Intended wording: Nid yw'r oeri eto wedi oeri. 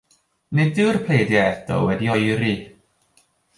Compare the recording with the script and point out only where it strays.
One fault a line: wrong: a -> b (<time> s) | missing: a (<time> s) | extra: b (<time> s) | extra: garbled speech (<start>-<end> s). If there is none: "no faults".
wrong: oeri -> pleidiau (1.1 s)